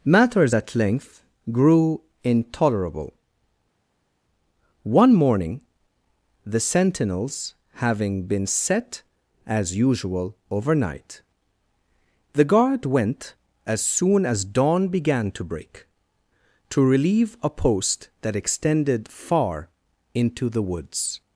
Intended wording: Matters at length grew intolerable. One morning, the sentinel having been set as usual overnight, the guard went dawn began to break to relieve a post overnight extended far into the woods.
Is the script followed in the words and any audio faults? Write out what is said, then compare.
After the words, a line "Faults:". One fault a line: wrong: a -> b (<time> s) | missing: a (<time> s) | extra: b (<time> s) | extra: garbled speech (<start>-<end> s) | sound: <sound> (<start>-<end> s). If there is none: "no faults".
Matters at length grew intolerable. One morning, the sentinels having been set as usual overnight, the guard went as soon as dawn began to break to relieve a post that extended far into the woods.
Faults:
wrong: sentinel -> sentinels (6.6 s)
extra: as soon as (13.7 s)
wrong: overnight -> that (18.2 s)